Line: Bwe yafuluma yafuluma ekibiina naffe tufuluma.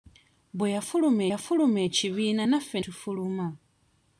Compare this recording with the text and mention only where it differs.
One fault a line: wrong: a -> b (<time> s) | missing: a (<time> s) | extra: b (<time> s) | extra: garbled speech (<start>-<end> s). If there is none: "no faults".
no faults